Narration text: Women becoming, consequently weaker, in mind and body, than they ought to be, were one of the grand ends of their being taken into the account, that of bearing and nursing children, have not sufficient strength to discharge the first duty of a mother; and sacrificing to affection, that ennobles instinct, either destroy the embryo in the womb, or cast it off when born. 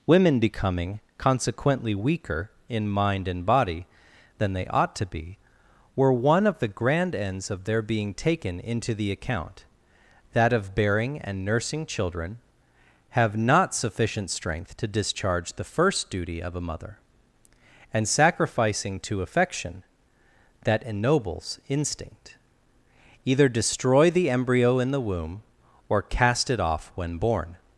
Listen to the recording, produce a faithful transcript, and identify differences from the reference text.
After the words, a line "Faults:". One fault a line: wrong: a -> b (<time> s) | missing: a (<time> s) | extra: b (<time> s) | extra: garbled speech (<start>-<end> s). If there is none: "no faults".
Women becoming, consequently weaker, in mind and body, than they ought to be, were one of the grand ends of their being taken into the account, that of bearing and nursing children, have not sufficient strength to discharge the first duty of a mother; and sacrificing to affection, that ennobles instinct, either destroy the embryo in the womb, or cast it off when born.
Faults:
no faults